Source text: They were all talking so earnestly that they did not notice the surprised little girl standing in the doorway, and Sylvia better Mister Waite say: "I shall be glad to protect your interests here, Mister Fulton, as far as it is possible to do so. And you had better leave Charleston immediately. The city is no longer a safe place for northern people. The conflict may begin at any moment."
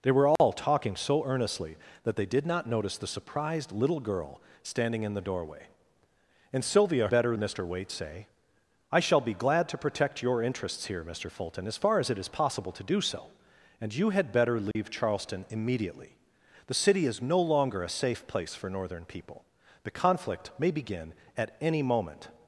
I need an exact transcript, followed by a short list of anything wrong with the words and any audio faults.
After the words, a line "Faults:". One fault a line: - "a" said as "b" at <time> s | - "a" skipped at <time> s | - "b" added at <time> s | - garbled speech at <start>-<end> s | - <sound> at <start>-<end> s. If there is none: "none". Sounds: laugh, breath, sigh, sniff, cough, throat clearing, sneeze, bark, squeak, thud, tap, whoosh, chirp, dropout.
They were all talking so earnestly that they did not notice the surprised little girl standing in the doorway, and Sylvia better Mister Waite say: "I shall be glad to protect your interests here, Mister Fulton, as far as it is possible to do so. And you had better leave Charleston immediately. The city is no longer a safe place for northern people. The conflict may begin at any moment."
Faults:
- dropout at 0.4-0.4 s
- dropout at 14.7-14.8 s